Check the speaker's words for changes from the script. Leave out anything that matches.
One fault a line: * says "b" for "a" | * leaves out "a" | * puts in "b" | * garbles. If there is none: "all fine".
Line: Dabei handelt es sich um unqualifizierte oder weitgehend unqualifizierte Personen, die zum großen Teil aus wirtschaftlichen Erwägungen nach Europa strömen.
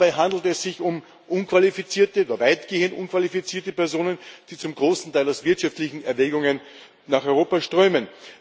all fine